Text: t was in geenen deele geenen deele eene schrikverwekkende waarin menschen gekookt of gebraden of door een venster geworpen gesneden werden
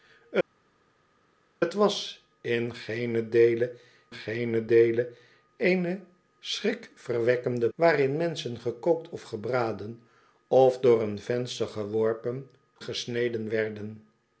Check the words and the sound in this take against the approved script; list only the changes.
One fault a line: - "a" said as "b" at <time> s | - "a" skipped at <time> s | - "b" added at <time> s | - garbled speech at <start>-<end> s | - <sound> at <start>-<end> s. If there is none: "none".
none